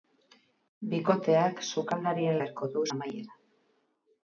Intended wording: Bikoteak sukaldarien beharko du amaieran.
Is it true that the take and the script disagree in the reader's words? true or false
false